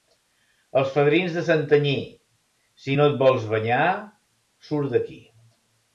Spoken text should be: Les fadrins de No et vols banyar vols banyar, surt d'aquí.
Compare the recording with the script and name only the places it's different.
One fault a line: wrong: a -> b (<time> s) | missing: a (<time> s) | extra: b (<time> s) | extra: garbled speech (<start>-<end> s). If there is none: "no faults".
wrong: Les -> Els (0.8 s)
extra: Santanyí si (1.5 s)
missing: vols banyar (3.8 s)